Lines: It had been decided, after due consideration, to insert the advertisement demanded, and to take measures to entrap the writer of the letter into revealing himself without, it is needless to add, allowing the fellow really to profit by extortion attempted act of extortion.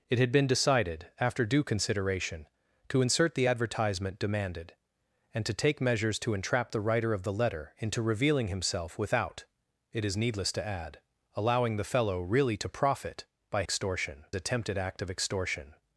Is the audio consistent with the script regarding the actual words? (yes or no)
yes